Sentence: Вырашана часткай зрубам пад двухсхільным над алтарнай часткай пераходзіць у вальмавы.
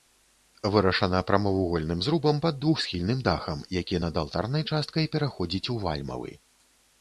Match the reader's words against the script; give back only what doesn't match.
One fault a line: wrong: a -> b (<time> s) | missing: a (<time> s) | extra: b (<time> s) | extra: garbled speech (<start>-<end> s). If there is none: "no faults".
wrong: часткай -> прамавугольным (1.3 s)
extra: дахам які (3.3 s)